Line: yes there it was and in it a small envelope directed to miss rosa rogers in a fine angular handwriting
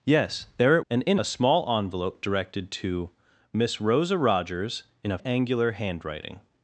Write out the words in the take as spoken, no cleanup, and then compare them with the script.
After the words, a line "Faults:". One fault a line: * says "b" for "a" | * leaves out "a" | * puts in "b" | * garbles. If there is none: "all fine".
yes there it and in a small envelope directed to miss rosa rogers in a angular handwriting
Faults:
* leaves out "was"
* leaves out "it"
* leaves out "fine"